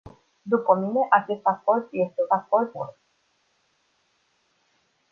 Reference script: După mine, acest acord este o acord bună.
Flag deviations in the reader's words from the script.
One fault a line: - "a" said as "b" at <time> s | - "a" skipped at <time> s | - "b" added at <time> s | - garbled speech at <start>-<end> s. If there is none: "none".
none